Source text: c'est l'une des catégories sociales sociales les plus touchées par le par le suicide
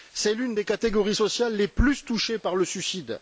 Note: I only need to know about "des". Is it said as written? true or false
true